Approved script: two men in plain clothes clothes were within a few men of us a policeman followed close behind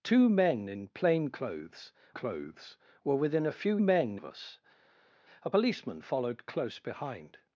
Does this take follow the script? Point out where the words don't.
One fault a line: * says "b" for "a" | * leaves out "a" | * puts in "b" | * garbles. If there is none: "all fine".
all fine